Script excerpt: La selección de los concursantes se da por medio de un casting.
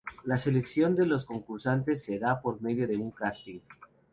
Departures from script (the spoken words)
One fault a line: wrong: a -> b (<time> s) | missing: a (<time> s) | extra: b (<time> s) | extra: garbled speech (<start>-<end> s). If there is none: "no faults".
no faults